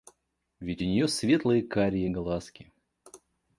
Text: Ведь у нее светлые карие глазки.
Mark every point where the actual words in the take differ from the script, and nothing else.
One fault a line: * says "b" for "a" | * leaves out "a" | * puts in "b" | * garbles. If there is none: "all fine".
all fine